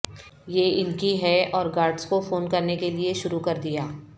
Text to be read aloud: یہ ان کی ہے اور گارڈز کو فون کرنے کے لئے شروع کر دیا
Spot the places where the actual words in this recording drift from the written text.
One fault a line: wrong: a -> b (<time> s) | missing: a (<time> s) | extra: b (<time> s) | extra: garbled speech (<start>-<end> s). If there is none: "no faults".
no faults